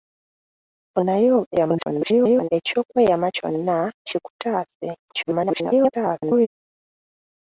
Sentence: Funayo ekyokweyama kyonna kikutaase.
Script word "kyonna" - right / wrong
right